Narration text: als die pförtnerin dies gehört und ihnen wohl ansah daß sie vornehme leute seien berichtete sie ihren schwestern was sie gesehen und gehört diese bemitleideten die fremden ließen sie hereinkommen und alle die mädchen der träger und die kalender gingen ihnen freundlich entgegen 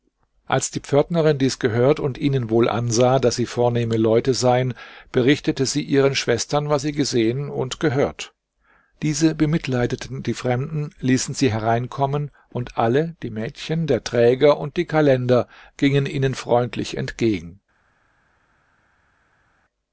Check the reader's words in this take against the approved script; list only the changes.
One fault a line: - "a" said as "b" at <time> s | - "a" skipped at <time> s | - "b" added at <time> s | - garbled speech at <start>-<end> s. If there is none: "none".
none